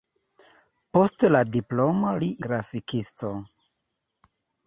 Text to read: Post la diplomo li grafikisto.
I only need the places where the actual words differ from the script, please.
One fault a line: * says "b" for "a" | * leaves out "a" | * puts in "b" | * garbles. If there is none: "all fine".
all fine